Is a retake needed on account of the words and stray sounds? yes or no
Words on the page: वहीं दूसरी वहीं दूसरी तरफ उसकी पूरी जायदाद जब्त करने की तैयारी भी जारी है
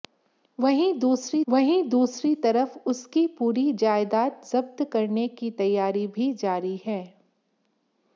no